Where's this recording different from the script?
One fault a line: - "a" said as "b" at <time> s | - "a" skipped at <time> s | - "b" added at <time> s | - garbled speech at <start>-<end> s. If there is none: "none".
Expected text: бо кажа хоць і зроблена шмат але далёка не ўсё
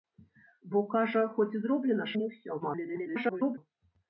- "шмат але далёка" skipped at 2.1 s
- garbled speech at 2.6-3.6 s